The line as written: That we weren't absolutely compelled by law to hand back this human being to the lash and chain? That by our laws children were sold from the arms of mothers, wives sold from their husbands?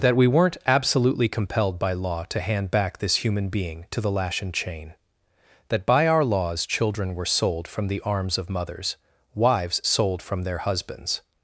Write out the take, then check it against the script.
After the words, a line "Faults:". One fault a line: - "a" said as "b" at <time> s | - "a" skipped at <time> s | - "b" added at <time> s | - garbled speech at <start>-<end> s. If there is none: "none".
That we weren't absolutely compelled by law to hand back this human being to the lash and chain? That by our laws children were sold from the arms of mothers, wives sold from their husbands?
Faults:
none